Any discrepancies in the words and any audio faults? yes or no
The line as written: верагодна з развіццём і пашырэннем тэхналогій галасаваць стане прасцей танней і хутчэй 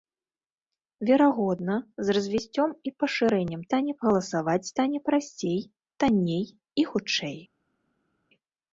yes